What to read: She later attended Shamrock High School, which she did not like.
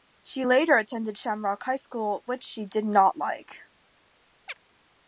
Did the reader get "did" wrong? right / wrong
right